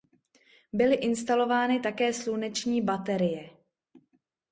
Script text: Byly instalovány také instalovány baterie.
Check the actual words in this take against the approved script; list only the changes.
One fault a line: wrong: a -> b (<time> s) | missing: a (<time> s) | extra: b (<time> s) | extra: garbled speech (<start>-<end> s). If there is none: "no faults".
wrong: instalovány -> sluneční (2.1 s)